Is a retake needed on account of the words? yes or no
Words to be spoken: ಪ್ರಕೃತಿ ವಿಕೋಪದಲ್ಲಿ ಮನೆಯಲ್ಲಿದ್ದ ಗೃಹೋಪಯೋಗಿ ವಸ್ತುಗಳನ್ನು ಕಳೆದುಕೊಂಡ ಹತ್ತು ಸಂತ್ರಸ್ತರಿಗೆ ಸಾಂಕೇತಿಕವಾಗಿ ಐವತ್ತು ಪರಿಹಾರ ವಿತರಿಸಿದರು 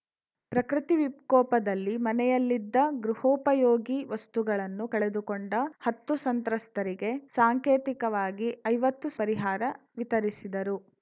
no